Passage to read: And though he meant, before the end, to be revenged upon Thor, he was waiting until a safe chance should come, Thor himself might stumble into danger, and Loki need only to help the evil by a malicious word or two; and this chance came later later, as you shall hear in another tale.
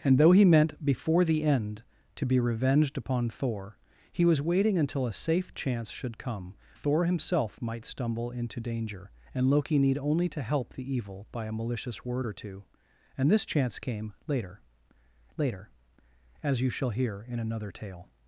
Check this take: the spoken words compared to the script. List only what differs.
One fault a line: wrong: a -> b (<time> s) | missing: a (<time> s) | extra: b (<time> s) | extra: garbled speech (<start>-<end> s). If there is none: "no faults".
no faults